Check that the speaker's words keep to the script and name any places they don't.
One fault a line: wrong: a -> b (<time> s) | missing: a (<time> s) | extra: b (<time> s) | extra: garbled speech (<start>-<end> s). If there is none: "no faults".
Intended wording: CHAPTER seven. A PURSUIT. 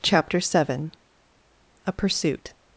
no faults